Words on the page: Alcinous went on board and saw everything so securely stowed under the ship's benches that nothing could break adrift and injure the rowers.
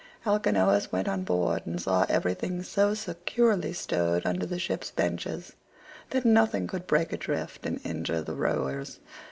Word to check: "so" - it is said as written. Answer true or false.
true